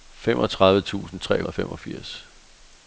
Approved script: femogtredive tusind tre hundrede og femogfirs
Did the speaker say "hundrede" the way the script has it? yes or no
no